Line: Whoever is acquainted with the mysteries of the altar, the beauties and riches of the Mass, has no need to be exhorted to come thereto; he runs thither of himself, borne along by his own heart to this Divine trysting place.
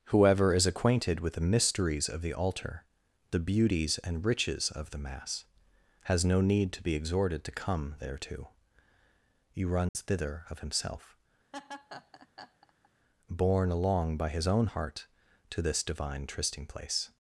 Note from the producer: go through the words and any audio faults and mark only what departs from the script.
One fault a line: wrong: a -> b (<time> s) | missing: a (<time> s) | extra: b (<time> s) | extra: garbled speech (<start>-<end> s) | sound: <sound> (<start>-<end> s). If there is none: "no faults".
sound: dropout (9.9-10.0 s)
sound: laugh (11.5-12.9 s)